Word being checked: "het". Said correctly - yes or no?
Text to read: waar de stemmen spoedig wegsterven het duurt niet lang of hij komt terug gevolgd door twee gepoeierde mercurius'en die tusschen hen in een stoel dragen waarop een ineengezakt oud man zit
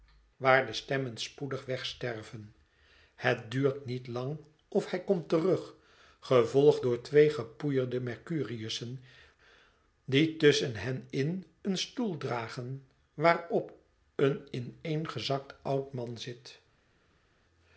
yes